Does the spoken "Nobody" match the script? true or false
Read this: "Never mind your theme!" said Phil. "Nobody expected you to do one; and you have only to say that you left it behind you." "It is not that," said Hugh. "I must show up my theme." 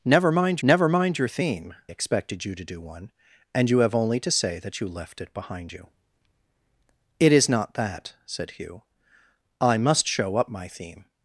false